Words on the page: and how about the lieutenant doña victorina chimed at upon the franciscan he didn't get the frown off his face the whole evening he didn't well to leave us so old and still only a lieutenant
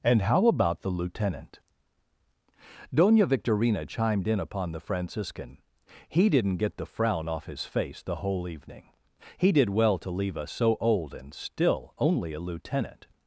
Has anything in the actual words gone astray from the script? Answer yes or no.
yes